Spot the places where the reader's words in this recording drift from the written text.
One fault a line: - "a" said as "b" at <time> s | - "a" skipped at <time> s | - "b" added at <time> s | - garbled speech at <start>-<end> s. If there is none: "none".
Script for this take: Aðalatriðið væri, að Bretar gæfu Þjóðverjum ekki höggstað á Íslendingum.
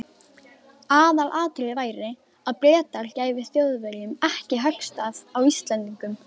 none